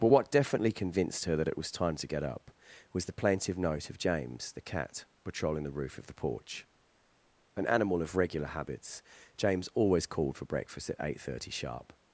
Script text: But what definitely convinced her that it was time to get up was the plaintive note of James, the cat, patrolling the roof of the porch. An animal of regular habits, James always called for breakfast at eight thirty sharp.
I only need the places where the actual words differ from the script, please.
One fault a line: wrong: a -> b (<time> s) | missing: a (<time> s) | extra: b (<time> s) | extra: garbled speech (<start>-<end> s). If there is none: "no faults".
no faults